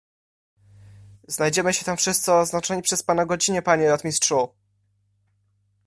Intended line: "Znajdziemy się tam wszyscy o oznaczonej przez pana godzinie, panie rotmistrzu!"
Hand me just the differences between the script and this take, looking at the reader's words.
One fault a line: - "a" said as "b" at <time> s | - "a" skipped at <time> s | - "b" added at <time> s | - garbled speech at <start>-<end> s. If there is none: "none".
none